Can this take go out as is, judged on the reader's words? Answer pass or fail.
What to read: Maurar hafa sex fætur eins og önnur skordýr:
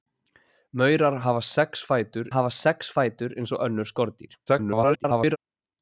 fail